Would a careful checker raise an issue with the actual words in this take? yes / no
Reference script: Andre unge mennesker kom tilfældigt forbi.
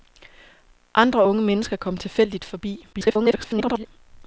yes